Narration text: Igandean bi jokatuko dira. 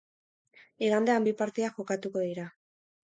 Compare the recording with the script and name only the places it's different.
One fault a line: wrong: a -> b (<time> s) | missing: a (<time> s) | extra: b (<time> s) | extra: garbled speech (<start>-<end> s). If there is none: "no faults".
extra: partida (1.4 s)